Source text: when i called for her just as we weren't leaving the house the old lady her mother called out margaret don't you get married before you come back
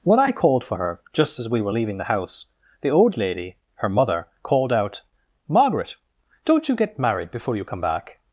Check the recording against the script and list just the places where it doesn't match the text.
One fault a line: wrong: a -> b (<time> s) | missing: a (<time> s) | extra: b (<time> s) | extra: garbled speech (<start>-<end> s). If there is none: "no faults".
wrong: weren't -> were (1.6 s)